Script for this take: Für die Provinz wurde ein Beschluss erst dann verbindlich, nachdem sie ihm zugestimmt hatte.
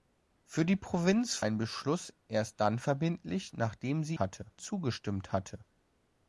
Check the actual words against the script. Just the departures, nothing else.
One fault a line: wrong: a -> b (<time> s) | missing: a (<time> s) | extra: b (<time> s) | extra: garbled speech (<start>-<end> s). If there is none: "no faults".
missing: wurde (1.4 s)
wrong: ihm -> hatte (4.2 s)